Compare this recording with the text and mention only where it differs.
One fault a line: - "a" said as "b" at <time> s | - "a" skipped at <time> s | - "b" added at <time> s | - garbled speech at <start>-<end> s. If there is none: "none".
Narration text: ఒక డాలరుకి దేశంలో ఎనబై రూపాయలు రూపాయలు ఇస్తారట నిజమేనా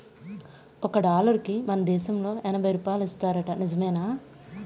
- "మన" added at 1.7 s
- "రూపాయలు" skipped at 3.0 s